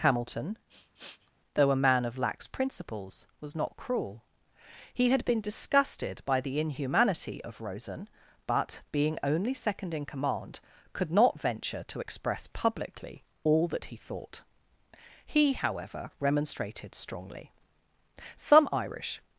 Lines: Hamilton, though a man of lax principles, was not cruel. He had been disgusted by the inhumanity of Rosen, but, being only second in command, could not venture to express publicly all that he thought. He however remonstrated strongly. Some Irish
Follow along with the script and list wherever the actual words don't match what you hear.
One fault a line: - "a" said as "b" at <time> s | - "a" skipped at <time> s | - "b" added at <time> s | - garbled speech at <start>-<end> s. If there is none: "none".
none